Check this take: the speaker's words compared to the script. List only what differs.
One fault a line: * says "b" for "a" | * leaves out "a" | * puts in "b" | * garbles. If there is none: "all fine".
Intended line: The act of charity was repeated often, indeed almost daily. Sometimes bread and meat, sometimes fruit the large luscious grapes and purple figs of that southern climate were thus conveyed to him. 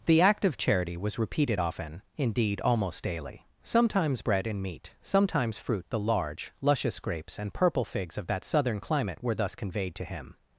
all fine